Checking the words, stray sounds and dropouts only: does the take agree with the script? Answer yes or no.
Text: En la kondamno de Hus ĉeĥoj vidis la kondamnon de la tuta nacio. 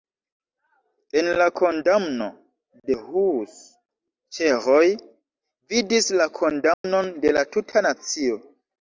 no